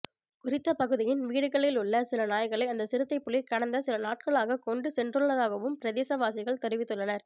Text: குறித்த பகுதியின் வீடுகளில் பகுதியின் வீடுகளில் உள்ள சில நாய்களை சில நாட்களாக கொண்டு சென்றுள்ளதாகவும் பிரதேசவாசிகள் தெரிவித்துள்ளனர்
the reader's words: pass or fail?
fail